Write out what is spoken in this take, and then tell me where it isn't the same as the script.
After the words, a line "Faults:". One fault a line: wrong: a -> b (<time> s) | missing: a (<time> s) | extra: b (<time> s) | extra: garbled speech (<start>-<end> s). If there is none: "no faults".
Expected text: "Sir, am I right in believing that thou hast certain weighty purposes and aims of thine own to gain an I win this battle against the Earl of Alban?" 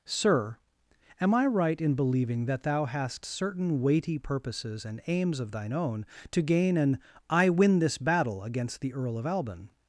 "Sir, am I right in believing that thou hast certain weighty purposes and aims of thine own to gain an I win this battle against the Earl of Alban?"
Faults:
no faults